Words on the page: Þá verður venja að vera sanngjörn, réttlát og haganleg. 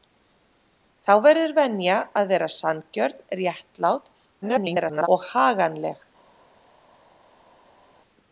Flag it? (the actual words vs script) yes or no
yes